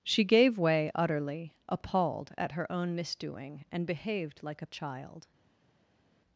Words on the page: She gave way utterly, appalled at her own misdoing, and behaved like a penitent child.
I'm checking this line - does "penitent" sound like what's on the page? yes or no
no